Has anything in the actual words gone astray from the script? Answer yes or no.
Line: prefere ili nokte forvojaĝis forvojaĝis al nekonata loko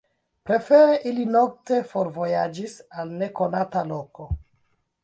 yes